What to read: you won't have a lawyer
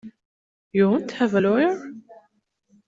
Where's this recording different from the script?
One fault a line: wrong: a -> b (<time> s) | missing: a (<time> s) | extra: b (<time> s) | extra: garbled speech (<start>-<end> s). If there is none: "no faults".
no faults